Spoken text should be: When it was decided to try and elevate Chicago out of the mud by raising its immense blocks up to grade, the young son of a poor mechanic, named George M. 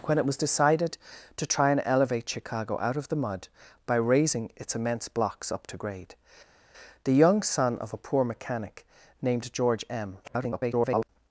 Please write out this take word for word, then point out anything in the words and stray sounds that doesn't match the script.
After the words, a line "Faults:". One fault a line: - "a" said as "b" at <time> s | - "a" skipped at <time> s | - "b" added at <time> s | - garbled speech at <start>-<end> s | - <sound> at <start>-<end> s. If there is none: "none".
When it was decided to try and elevate Chicago out of the mud by raising its immense blocks up to grade, the young son of a poor mechanic, named George M. [garbled]
Faults:
- garbled speech at 10.2-11.1 s